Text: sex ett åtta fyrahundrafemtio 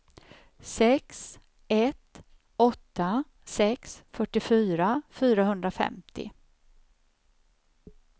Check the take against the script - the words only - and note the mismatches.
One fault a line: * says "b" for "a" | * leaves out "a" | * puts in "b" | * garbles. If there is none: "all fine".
* puts in "sex fyrtiofyra"